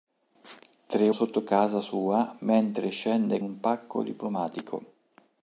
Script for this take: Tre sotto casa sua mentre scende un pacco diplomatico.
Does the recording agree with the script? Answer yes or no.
yes